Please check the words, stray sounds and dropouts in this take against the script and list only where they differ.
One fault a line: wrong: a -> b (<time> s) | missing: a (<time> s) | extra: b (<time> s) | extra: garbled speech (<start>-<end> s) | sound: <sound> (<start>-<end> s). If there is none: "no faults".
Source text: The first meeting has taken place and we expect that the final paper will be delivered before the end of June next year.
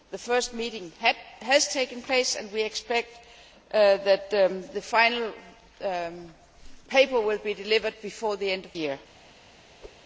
missing: June next (8.8 s)
sound: whoosh (9.8-10.0 s)